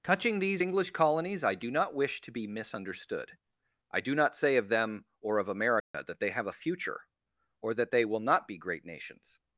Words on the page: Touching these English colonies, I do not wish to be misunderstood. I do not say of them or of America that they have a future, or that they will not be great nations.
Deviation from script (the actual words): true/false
false